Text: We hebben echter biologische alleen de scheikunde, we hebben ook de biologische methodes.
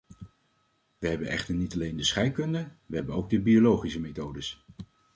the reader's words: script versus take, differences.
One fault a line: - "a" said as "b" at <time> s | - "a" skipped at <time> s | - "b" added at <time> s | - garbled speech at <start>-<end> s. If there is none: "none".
- "biologische" said as "niet" at 1.6 s